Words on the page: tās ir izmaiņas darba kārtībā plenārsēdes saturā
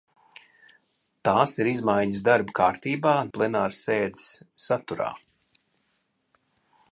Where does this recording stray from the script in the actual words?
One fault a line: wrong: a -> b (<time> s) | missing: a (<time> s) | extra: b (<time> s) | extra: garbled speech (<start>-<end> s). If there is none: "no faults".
no faults